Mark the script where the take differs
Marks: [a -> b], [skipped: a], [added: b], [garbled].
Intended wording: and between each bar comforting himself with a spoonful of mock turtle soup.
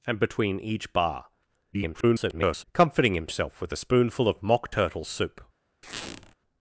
and between each bar [garbled] comforting himself with a spoonful of mock turtle soup.